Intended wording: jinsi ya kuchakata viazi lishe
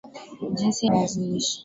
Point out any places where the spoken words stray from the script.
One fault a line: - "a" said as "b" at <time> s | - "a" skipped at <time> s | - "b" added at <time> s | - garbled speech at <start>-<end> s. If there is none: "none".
- "ya kuchakata" skipped at 0.9 s